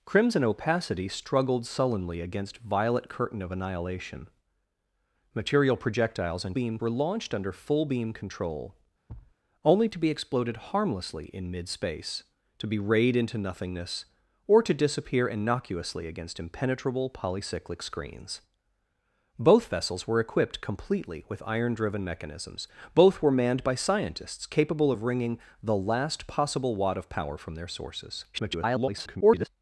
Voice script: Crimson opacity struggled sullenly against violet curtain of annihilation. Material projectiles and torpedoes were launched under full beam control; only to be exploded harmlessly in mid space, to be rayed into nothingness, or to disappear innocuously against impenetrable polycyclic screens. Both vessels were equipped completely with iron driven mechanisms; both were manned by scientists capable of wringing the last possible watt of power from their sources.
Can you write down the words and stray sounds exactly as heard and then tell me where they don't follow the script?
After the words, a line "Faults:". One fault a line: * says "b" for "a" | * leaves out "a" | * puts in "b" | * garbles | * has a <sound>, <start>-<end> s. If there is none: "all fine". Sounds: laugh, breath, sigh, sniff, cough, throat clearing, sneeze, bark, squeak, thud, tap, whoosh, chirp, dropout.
Crimson opacity struggled sullenly against violet curtain of annihilation. Material projectiles and beam were launched under full beam control; only to be exploded harmlessly in mid space, to be rayed into nothingness, or to disappear innocuously against impenetrable polycyclic screens. Both vessels were equipped completely with iron driven mechanisms; both were manned by scientists capable of wringing the last possible watt of power from their sources. [garbled]
Faults:
* says "beam" for "torpedoes"
* has a thud, 9.1-9.4 s
* garbles